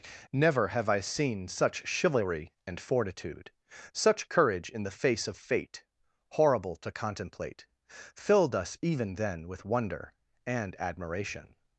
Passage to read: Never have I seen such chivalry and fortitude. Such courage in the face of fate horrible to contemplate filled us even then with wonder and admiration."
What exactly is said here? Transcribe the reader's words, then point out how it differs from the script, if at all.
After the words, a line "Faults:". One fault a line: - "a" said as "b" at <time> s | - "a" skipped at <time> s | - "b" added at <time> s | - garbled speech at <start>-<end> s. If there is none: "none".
Never have I seen such chivalry and fortitude. Such courage in the face of fate horrible to contemplate filled us even then with wonder and admiration."
Faults:
none